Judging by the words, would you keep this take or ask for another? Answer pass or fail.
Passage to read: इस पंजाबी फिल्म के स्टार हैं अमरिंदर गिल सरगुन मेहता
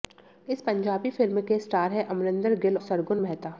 pass